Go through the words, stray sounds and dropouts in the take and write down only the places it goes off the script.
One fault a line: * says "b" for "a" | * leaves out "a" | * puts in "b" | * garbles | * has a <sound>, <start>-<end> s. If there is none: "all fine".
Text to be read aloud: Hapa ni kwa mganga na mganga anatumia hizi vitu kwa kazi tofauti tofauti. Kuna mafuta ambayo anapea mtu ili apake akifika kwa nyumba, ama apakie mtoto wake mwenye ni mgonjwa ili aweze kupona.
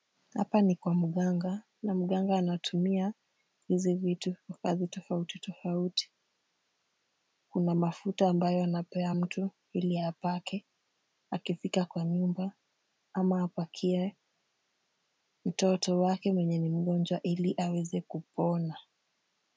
all fine